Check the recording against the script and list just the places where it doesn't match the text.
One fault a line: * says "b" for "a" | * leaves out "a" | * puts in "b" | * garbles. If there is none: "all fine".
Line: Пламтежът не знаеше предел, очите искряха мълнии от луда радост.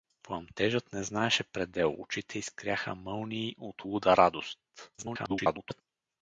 * garbles